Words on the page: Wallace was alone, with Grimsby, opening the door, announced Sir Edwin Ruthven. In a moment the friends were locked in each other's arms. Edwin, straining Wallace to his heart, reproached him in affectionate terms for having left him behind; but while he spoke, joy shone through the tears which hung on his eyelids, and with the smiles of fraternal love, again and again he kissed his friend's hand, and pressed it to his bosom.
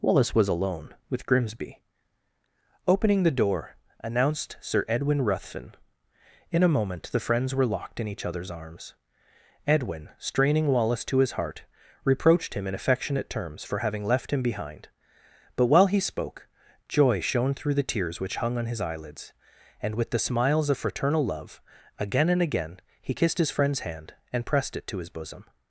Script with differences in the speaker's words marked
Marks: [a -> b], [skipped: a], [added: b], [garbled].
Wallace was alone, with Grimsby, opening the door, announced Sir Edwin Ruthven. In a moment the friends were locked in each other's arms. Edwin, straining Wallace to his heart, reproached him in affectionate terms for having left him behind; but while he spoke, joy shone through the tears which hung on his eyelids, and with the smiles of fraternal love, again and again he kissed his friend's hand, and pressed it to his bosom.